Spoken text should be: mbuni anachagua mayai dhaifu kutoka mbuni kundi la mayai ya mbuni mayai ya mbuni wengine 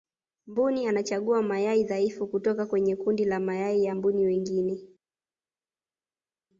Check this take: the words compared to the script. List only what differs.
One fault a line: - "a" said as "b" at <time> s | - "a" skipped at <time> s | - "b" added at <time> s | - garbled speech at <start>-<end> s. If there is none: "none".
- "mbuni" said as "kwenye" at 2.6 s
- "mayai ya mbuni" skipped at 4.2 s